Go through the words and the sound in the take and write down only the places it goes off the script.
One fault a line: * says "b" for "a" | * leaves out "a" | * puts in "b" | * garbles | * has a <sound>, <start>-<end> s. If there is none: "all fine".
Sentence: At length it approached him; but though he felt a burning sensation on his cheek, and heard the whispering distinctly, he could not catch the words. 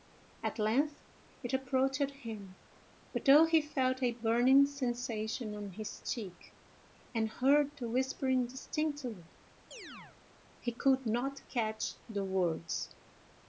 * has a chirp, 9.7-10.2 s